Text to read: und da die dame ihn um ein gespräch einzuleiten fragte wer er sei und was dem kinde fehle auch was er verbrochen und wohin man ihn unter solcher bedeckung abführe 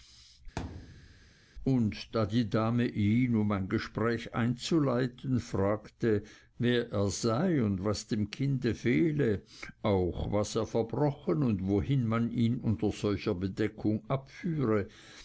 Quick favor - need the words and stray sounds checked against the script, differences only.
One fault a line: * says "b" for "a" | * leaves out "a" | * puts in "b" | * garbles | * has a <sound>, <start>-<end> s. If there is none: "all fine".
* has a thud, 0.6-1.3 s